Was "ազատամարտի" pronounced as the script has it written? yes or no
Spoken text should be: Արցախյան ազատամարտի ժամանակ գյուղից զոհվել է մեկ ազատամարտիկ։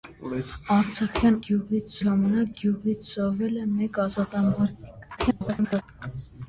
no